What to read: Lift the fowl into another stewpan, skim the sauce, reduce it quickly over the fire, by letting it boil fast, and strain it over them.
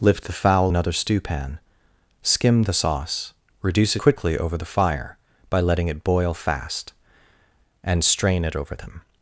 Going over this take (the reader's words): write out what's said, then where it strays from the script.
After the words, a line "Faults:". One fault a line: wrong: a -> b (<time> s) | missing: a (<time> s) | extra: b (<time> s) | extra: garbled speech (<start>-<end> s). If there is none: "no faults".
Lift the fowl another stewpan, skim the sauce, reduce quickly over the fire, by letting it boil fast, and strain it over them.
Faults:
missing: into (0.7 s)
missing: it (4.0 s)